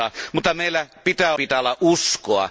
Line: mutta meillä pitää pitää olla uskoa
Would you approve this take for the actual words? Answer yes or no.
yes